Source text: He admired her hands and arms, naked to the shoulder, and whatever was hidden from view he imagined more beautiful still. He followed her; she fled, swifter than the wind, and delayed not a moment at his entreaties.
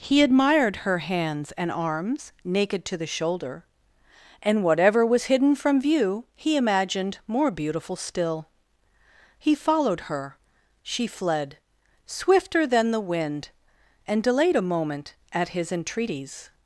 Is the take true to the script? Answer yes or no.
no